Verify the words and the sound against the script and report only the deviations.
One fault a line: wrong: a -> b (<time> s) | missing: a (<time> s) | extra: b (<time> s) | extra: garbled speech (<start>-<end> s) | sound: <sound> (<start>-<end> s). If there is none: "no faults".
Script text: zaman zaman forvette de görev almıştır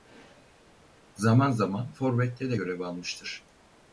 no faults